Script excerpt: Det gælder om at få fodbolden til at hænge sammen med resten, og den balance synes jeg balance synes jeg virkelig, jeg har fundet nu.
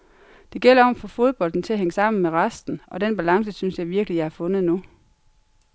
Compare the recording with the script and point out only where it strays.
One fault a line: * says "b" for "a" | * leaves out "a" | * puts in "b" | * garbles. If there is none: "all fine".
* leaves out "balance synes jeg"